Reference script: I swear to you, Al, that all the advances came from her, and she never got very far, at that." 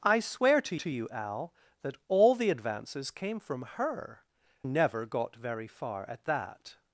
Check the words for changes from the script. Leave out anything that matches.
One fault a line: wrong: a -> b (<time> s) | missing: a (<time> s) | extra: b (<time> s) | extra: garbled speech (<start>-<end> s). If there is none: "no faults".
extra: to (0.7 s)
missing: and she (4.2 s)